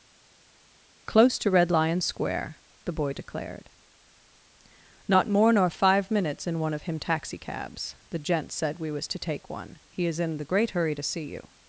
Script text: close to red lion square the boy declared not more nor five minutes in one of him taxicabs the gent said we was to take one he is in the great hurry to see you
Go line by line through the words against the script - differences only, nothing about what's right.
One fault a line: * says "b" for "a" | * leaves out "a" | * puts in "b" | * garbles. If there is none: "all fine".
all fine